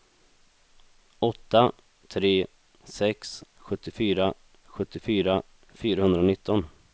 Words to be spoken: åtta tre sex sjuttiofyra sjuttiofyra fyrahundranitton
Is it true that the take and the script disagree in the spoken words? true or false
false